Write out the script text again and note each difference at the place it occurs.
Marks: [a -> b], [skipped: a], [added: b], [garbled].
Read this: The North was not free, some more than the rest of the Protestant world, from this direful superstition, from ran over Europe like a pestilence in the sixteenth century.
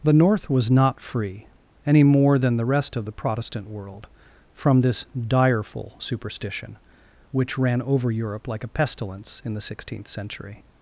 The North was not free, [some -> any] more than the rest of the Protestant world, from this direful superstition, [from -> which] ran over Europe like a pestilence in the sixteenth century.